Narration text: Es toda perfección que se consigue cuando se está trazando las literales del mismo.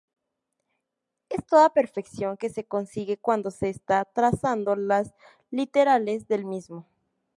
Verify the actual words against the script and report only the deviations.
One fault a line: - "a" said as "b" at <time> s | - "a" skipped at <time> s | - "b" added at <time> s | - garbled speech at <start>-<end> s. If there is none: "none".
none